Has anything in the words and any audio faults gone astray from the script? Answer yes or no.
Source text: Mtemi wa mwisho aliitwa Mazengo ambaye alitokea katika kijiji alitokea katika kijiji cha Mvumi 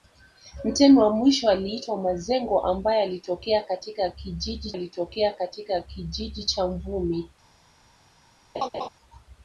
yes